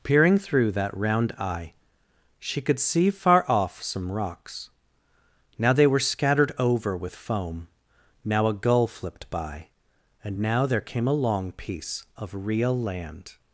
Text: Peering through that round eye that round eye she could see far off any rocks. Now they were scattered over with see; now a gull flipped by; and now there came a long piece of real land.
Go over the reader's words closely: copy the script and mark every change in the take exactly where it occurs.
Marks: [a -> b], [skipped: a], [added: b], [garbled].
Peering through that round eye [skipped: that round eye] she could see far off [any -> some] rocks. Now they were scattered over with [see; -> foam] now a gull flipped by; and now there came a long piece of real land.